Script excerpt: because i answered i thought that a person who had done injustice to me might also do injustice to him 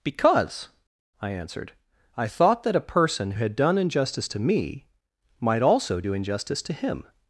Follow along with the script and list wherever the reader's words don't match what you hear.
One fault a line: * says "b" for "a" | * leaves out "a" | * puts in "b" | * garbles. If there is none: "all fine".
* leaves out "who"